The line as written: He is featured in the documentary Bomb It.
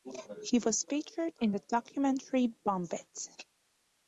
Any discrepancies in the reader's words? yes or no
yes